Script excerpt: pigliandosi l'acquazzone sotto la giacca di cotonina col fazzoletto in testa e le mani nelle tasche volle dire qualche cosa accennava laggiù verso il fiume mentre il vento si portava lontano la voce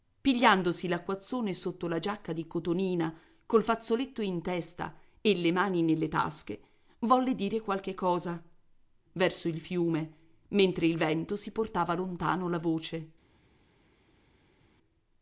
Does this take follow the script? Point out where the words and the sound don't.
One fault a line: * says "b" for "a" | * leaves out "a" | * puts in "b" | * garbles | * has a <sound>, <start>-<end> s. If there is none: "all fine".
* leaves out "accennava laggiù"